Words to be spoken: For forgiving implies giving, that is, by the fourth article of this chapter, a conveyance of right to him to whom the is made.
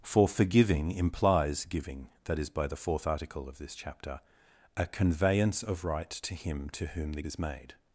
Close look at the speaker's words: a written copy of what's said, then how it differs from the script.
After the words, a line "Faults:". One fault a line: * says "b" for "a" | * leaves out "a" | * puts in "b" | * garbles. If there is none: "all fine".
For forgiving implies giving, that is, by the fourth article of this chapter, a conveyance of right to him to whom the is made.
Faults:
all fine